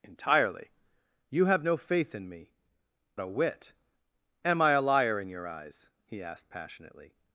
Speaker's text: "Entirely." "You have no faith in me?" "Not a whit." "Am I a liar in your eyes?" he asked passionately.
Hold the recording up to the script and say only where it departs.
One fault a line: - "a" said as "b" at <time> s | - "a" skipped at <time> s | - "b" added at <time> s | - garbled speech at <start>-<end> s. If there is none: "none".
- "Not" skipped at 2.5 s